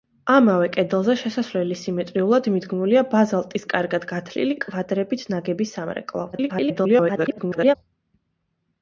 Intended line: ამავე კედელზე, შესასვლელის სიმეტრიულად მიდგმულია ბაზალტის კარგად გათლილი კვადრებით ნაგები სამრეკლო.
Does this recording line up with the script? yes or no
no